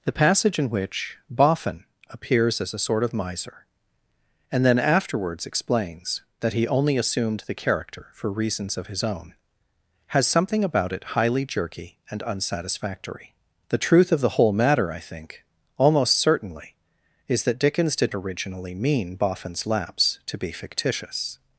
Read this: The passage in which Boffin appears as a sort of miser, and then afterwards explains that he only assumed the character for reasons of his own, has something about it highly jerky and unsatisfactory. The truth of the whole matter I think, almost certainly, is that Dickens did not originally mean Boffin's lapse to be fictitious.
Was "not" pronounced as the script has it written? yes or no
no